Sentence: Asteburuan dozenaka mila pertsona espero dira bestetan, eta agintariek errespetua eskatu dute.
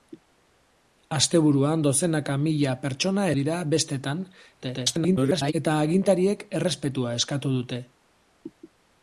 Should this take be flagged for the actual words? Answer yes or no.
yes